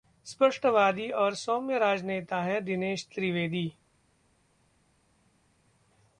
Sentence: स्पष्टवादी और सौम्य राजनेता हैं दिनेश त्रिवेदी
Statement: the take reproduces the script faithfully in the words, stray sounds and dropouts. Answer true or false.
true